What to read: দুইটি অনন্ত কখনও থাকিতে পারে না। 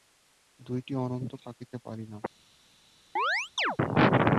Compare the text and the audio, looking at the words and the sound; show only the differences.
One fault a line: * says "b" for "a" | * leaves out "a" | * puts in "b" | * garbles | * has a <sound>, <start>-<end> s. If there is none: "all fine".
* leaves out "কখনও"
* has a chirp, 3.2-3.8 s